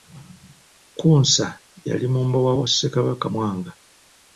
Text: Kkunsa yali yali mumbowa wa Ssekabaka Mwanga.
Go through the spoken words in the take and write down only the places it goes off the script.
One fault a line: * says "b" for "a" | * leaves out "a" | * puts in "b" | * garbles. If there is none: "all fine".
* leaves out "yali"